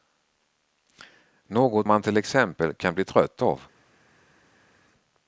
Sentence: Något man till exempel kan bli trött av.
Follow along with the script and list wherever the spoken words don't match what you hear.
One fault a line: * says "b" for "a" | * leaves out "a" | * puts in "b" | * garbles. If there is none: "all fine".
all fine